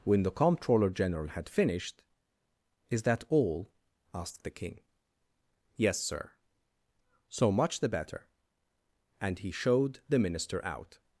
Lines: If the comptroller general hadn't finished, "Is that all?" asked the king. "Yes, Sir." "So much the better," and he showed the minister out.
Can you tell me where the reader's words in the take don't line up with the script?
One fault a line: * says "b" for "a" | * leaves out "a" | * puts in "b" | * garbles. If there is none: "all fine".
* says "When" for "If"
* says "had" for "hadn't"